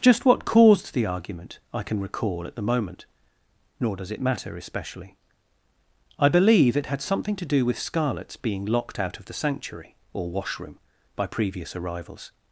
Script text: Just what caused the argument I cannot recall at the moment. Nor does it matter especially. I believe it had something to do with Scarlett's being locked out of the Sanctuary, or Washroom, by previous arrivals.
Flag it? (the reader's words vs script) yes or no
yes